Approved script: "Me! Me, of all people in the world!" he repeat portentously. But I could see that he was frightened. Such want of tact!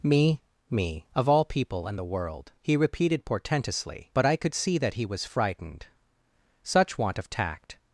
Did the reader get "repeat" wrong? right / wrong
wrong